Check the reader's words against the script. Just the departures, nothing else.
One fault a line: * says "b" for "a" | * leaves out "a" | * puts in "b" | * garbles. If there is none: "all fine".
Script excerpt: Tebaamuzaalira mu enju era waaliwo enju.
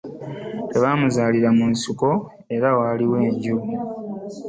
* says "nsiko" for "enju"